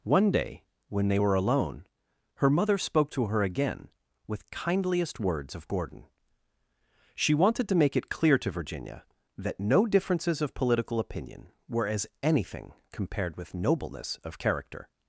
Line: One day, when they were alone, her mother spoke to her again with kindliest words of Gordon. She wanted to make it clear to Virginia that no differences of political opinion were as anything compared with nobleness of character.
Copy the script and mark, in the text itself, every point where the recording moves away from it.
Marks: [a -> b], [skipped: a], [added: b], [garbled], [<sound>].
One day, when they were alone, her mother spoke to her again with kindliest words of Gordon. She wanted to make it clear to Virginia that no differences of political opinion were as anything compared with nobleness of character.